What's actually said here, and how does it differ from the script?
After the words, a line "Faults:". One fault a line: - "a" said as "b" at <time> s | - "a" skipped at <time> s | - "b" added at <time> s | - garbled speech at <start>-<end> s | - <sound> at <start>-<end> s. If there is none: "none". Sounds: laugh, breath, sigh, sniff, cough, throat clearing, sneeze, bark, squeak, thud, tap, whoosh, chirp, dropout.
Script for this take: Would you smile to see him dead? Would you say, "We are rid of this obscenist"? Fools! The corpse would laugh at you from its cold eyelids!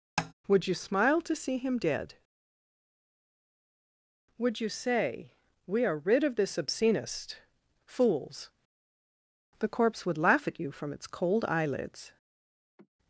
Would you smile to see him dead? Would you say, "We are rid of this obscenist"? Fools! The corpse would laugh at you from its cold eyelids!
Faults:
- tap at 0.2-0.3 s
- sigh at 12.8-12.9 s